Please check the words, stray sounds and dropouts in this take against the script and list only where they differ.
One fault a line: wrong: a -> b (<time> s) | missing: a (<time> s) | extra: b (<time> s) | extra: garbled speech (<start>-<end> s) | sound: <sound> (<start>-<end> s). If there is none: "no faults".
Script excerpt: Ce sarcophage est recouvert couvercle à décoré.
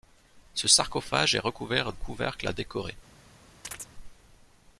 sound: chirp (3.6-3.9 s)